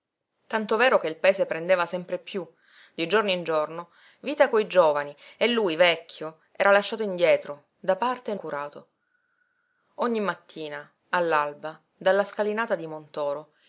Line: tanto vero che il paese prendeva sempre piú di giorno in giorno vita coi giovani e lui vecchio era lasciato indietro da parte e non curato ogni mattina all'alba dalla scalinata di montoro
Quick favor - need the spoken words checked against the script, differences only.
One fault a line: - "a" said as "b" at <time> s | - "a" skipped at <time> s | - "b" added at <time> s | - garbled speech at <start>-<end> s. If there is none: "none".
- "non" skipped at 8.3 s